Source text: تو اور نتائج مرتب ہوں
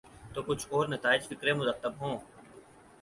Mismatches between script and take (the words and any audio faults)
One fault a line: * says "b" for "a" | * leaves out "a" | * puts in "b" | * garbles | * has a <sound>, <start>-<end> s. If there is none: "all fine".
* puts in "کچھ"
* puts in "فکر"